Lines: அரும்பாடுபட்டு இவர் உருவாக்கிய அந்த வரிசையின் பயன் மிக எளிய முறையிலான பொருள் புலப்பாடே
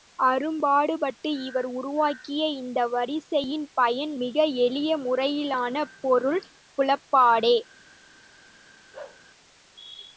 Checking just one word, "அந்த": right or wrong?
wrong